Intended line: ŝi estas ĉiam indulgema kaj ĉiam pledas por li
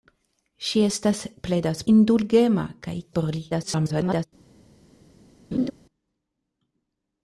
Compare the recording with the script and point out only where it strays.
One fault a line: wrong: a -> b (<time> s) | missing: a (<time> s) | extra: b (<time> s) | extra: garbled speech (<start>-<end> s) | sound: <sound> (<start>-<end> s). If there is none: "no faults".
wrong: ĉiam -> pledas (1.5 s)
missing: ĉiam pledas (3.0 s)
extra: garbled speech (3.5-4.3 s)
sound: laugh (5.5-5.7 s)